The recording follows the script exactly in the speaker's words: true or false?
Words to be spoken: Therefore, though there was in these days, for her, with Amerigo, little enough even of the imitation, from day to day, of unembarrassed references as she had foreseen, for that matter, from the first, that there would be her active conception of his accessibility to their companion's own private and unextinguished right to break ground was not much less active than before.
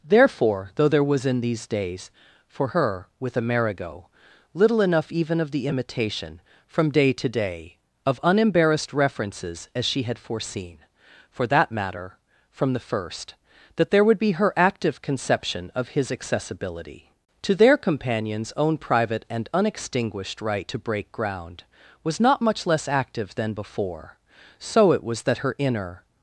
false